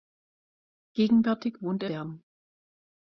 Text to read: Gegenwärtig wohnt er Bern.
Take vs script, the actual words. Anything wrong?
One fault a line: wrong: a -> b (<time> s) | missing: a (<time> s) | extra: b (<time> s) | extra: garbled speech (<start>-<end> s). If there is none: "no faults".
no faults